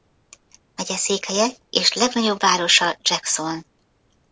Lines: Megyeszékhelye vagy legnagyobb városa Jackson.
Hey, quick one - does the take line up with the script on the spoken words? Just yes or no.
no